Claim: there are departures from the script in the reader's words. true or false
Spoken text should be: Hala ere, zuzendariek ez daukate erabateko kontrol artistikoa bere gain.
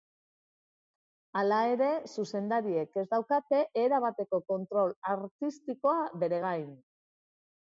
false